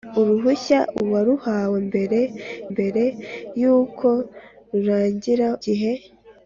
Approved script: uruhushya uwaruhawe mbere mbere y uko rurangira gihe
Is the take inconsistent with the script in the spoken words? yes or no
no